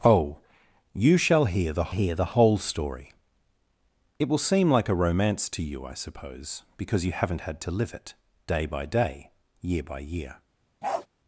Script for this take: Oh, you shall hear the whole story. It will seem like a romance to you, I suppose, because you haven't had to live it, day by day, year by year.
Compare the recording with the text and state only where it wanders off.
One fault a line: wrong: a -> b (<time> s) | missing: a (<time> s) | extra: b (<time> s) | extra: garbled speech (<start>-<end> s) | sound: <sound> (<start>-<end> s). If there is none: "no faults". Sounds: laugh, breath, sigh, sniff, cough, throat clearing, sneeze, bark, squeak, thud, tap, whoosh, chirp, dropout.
extra: hear the (1.9 s)
sound: bark (10.8-11.1 s)